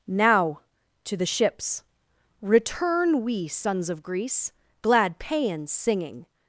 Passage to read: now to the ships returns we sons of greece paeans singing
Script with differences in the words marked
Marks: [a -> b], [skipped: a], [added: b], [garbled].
now to the ships [returns -> return] we sons of greece [added: glad] paeans singing